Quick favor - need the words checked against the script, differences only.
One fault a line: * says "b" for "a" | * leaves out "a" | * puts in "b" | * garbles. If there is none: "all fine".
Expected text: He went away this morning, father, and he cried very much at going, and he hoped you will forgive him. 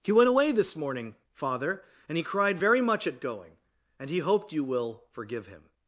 all fine